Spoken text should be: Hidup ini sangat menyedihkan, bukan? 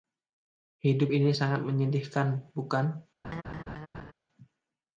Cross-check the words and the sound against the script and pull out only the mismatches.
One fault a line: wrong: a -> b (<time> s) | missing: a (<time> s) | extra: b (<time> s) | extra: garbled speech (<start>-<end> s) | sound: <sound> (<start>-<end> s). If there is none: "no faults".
sound: laugh (3.2-4.1 s)